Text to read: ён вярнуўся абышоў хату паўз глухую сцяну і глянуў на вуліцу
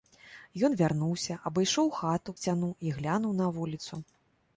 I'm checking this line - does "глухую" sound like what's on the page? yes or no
no